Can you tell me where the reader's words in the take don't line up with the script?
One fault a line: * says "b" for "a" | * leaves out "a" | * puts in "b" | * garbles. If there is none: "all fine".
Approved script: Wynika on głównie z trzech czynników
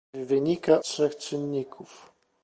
* leaves out "on głównie z"